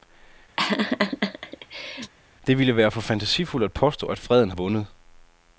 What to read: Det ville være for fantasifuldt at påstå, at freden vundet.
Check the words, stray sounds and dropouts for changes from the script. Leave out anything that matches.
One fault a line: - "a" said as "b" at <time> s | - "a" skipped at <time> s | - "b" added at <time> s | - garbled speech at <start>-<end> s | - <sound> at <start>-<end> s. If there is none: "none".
- laugh at 0.6-2.1 s